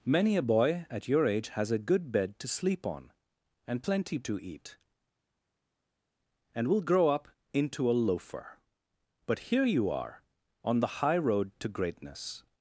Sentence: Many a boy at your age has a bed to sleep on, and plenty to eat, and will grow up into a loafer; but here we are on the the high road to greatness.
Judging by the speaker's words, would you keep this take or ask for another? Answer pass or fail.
fail